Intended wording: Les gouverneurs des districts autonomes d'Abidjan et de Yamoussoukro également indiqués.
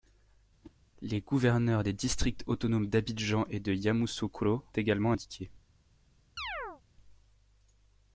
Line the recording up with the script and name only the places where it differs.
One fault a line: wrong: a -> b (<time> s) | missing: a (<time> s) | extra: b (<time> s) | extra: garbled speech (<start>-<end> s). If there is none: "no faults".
no faults